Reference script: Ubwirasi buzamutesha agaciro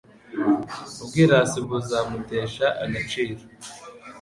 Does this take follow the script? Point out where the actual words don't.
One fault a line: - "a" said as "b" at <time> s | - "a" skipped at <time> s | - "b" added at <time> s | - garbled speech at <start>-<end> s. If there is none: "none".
none